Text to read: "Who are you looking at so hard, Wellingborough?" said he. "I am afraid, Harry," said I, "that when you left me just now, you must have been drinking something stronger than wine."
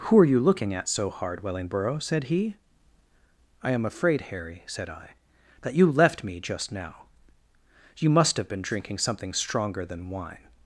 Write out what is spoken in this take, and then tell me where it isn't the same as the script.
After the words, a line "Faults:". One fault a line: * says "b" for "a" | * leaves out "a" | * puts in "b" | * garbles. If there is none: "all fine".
"Who are you looking at so hard, Wellingborough?" said he. "I am afraid, Harry," said I, "that you left me just now, you must have been drinking something stronger than wine."
Faults:
* leaves out "when"